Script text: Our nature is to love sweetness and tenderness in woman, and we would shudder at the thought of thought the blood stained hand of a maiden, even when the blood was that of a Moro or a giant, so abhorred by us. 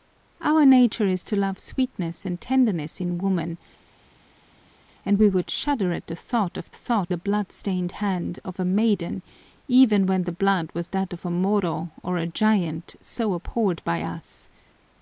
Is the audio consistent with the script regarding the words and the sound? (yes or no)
yes